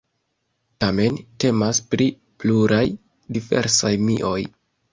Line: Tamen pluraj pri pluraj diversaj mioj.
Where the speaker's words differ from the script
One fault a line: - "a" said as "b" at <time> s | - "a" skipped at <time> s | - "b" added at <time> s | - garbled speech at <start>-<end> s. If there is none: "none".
- "pluraj" said as "temas" at 1.4 s